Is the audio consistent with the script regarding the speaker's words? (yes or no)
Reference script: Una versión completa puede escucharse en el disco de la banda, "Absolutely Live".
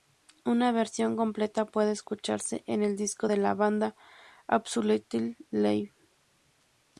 yes